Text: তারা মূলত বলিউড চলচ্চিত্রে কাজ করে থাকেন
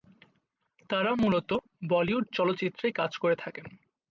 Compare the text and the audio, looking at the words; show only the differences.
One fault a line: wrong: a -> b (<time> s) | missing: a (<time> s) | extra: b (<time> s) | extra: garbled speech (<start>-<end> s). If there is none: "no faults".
no faults